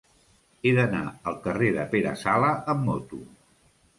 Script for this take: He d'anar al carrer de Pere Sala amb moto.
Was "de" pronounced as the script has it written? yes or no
yes